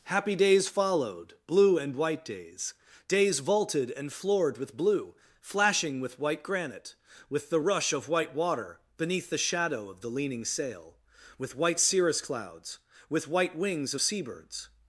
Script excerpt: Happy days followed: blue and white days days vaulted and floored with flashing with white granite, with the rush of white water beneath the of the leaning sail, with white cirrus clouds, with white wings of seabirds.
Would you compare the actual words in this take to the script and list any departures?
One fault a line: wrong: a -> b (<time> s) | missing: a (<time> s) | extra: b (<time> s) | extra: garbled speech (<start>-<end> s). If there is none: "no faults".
extra: blue (4.8 s)
extra: shadow (9.4 s)